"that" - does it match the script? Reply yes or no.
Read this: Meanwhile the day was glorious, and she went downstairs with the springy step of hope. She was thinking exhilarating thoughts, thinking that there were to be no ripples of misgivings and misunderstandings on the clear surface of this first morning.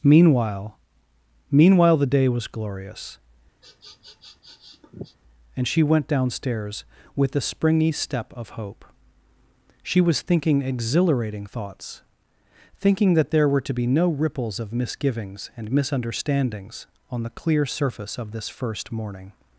yes